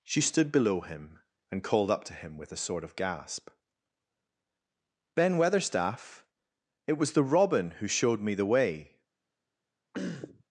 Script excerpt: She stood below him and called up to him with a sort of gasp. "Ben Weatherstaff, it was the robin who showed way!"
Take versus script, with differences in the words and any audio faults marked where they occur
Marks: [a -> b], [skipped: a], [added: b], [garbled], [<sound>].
She stood below him and called up to him with a sort of gasp. "Ben Weatherstaff, it was the robin who showed [added: me the] way!" [throat clearing]